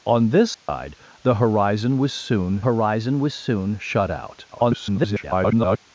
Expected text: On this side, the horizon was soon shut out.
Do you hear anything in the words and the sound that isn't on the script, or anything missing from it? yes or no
yes